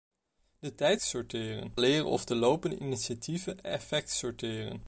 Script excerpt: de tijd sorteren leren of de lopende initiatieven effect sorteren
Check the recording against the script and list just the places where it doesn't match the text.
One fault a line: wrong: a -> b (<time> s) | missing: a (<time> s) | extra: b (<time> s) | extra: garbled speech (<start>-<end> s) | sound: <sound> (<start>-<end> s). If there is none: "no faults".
no faults